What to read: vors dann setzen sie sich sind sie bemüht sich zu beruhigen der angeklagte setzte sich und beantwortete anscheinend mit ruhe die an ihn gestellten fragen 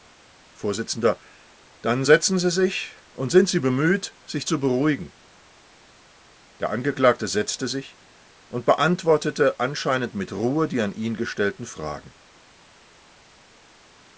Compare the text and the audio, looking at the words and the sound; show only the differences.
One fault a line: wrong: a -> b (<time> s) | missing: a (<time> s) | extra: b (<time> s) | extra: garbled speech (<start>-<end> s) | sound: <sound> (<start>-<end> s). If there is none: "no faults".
extra: und (3.1 s)